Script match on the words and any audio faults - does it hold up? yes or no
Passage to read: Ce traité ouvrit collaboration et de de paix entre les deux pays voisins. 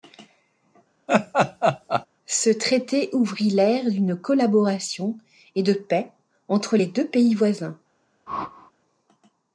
no